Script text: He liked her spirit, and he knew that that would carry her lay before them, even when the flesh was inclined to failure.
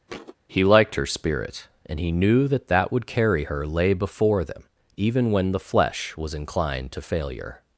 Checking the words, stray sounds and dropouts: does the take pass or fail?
fail